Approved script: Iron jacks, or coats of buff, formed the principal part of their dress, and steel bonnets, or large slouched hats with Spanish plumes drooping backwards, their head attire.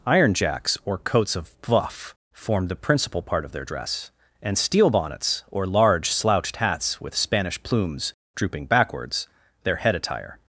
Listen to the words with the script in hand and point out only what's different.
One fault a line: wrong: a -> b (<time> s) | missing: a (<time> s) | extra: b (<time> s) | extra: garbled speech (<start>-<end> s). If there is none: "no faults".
no faults